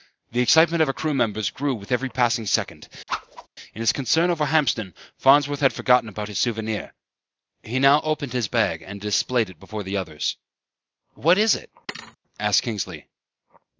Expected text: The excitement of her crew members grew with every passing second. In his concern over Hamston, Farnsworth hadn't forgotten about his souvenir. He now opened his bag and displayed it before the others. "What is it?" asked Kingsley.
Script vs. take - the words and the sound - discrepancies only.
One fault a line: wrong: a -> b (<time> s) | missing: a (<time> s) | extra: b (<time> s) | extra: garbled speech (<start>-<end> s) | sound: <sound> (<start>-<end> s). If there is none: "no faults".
sound: whoosh (3.1-3.5 s)
wrong: hadn't -> had (5.6 s)
sound: thud (11.9-12.2 s)